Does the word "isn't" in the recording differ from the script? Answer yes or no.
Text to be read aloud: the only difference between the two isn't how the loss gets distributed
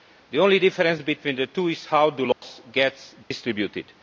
yes